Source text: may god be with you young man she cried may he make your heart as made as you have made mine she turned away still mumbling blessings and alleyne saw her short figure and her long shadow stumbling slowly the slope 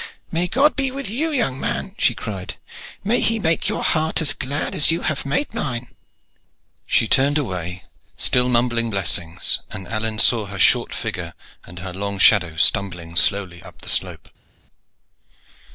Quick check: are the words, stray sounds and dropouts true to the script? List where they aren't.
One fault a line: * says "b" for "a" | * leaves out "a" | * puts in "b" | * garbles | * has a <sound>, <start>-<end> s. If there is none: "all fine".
* says "glad" for "made"
* puts in "up"